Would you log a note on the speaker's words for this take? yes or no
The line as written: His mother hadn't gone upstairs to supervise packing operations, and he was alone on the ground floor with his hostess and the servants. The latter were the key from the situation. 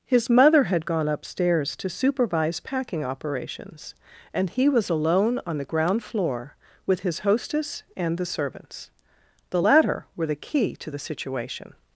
yes